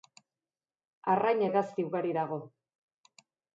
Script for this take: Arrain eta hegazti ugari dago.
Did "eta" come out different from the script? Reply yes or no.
yes